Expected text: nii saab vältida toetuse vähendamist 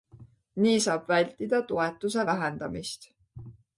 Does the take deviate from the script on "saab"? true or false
false